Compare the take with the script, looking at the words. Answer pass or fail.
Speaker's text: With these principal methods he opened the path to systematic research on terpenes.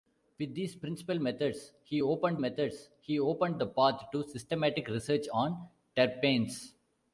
fail